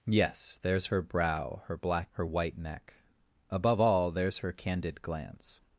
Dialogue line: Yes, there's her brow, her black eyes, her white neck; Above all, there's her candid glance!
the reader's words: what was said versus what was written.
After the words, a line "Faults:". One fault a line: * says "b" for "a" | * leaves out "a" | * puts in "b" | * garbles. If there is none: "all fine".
Yes, there's her brow, her black her white neck; Above all, there's her candid glance!
Faults:
* leaves out "eyes"